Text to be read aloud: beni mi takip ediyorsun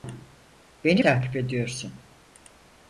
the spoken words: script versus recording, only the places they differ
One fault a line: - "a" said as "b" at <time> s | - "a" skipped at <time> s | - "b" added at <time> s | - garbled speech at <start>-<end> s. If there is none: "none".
- "mi" skipped at 1.0 s